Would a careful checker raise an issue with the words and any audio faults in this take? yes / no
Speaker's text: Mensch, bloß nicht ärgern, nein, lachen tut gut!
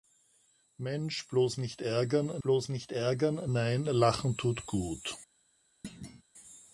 yes